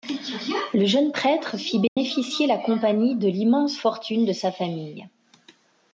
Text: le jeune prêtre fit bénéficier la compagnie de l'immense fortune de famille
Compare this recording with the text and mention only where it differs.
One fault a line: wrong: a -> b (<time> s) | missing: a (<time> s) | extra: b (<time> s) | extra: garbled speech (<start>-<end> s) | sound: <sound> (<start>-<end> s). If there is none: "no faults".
sound: dropout (1.9-2.0 s)
extra: sa (4.3 s)